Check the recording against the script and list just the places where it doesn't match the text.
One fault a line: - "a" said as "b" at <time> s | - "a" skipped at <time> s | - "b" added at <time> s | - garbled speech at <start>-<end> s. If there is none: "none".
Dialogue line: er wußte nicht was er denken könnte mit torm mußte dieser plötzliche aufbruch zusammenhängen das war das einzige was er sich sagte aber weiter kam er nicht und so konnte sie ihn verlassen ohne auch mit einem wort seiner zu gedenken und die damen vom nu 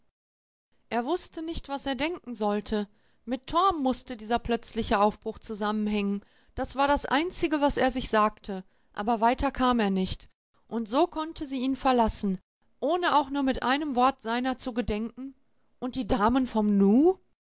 - "könnte" said as "sollte" at 2.3 s
- "nur" added at 13.3 s